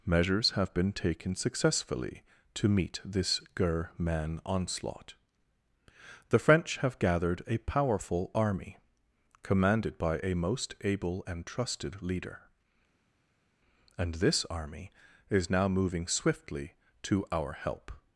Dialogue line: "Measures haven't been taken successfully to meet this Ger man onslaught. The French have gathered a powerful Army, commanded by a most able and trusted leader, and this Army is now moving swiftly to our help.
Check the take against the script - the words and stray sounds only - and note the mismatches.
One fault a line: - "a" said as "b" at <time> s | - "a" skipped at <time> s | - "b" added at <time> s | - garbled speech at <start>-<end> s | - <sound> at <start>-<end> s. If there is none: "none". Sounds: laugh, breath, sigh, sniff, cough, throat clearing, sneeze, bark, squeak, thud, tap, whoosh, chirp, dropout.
- "haven't" said as "have" at 0.5 s